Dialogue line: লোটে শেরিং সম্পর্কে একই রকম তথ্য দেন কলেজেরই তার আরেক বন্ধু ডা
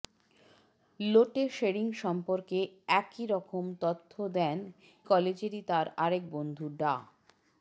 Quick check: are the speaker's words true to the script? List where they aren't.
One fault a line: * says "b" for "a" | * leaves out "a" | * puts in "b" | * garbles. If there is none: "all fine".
all fine